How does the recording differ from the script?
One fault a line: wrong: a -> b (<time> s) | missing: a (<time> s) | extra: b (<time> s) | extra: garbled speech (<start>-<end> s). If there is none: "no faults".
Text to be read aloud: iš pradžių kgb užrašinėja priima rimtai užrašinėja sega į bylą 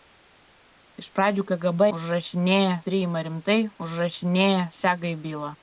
no faults